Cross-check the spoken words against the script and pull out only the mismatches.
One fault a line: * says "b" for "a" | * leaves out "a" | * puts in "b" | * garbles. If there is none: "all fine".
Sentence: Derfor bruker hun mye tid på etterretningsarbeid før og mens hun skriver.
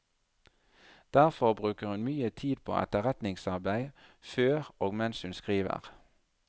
all fine